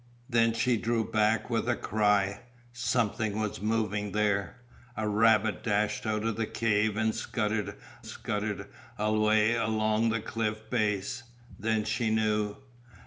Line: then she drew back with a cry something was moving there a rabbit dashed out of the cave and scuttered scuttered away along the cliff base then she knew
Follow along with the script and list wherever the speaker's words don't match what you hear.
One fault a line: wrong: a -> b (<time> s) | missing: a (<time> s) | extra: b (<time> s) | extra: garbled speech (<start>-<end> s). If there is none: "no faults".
no faults